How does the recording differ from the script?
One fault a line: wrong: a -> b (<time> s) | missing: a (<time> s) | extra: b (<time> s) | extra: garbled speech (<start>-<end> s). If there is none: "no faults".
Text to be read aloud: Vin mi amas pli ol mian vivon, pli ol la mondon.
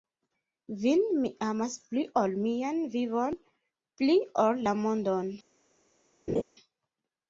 no faults